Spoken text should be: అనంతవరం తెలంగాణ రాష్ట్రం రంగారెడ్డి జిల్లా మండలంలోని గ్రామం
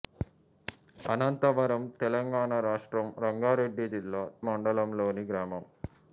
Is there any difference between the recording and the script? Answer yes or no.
no